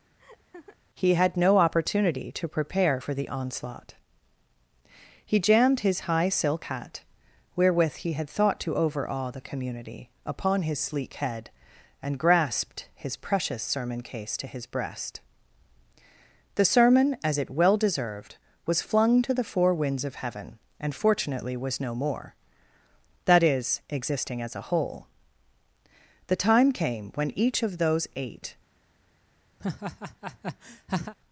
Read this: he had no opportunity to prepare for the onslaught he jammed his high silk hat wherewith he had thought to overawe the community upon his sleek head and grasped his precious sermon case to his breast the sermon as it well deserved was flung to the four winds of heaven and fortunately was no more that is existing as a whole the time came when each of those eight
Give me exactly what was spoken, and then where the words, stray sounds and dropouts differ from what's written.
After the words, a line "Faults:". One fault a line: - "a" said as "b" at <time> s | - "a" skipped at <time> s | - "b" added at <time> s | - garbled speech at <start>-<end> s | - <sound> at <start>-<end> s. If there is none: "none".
he had no opportunity to prepare for the onslaught he jammed his high silk hat wherewith he had thought to overawe the community upon his sleek head and grasped his precious sermon case to his breast the sermon as it well deserved was flung to the four winds of heaven and fortunately was no more that is existing as a whole the time came when each of those eight
Faults:
- laugh at 0.2-0.8 s
- laugh at 29.6-31.1 s